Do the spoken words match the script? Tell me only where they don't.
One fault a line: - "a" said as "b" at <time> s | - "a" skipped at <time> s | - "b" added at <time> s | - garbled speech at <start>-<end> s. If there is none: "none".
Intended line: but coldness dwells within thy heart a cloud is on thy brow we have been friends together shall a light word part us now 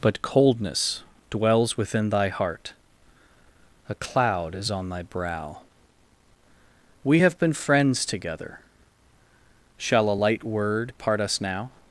none